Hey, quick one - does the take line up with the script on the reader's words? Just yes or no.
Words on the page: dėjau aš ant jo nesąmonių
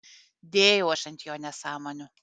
yes